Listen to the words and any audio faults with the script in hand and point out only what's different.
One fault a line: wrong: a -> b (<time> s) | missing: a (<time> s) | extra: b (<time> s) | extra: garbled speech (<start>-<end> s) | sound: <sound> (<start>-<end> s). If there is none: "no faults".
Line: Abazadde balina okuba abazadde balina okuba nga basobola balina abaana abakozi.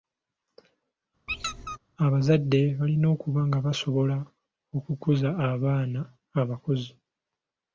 sound: squeak (1.3-1.8 s)
missing: abazadde balina okuba (3.4 s)
wrong: balina -> okukuza (4.8 s)